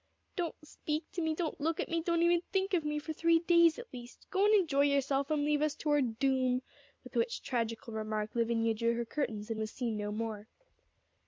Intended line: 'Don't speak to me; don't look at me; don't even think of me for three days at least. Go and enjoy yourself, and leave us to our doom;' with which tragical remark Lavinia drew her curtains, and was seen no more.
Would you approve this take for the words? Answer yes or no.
yes